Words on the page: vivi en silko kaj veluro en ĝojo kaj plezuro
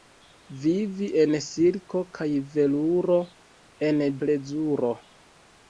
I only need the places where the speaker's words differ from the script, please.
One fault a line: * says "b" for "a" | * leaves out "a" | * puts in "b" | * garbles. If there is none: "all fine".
* leaves out "ĝojo kaj"